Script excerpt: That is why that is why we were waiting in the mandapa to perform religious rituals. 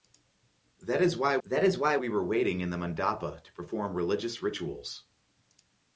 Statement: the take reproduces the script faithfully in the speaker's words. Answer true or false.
true